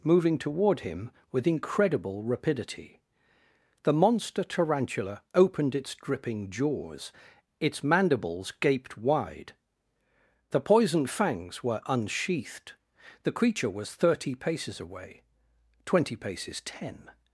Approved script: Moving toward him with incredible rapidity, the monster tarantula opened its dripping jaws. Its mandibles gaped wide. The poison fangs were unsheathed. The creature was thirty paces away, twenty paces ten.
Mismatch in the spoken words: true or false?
false